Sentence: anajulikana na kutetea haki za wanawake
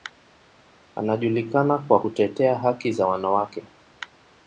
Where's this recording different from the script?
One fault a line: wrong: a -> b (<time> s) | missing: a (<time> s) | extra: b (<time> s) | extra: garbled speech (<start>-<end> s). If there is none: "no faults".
wrong: na -> kwa (1.8 s)